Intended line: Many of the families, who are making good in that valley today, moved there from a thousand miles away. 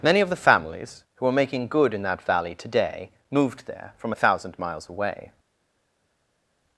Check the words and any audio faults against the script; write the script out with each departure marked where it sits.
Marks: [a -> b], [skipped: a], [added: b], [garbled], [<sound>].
Many of the families, who are making good in that valley today, moved there from a thousand miles away.